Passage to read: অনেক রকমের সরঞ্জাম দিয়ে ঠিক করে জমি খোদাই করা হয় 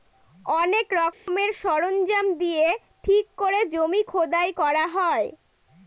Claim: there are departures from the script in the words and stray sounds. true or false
true